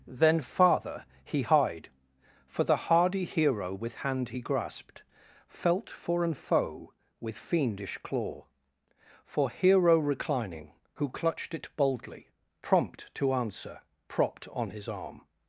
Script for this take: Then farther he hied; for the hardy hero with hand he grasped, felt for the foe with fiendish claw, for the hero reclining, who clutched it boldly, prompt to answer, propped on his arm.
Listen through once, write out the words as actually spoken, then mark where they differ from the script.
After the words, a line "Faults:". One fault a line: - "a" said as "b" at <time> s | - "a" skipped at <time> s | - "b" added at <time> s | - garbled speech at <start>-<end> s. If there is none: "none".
Then farther he hied; for the hardy hero with hand he grasped, felt for an foe with fiendish claw, for hero reclining, who clutched it boldly, prompt to answer, propped on his arm.
Faults:
- "the" said as "an" at 6.2 s
- "the" skipped at 9.5 s